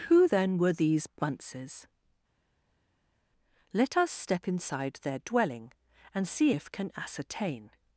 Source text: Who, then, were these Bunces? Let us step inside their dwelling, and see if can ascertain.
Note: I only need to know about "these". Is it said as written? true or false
true